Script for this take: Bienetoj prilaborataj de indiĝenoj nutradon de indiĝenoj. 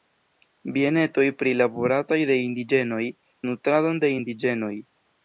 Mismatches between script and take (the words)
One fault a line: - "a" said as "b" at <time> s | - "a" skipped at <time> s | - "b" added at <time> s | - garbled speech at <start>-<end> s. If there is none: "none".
none